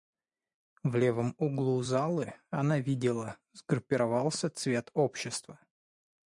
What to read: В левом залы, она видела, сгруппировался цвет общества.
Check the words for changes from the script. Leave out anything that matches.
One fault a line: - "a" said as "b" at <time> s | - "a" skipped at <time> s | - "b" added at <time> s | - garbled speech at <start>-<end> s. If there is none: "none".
- "углу" added at 1.4 s